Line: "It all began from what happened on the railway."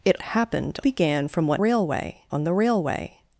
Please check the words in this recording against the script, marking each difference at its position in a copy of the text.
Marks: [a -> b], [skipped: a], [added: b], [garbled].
"It [all -> happened] began from what [happened -> railway] on the railway."